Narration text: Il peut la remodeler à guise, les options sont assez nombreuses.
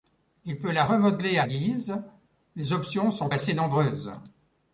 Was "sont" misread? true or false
false